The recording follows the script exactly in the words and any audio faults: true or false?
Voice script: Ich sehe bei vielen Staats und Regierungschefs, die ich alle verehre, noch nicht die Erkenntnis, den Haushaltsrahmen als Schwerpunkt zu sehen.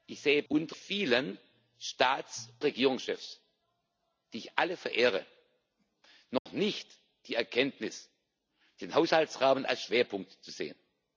false